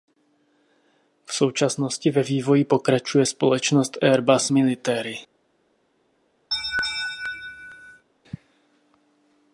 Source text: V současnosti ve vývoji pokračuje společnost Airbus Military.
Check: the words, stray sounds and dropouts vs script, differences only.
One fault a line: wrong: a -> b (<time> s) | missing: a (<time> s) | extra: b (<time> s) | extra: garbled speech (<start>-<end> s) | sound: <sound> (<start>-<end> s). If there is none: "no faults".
sound: laugh (6.5-8.0 s)